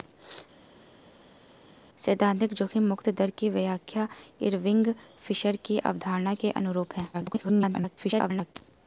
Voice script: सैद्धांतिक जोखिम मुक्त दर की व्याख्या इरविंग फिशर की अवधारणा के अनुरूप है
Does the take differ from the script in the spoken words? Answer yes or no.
yes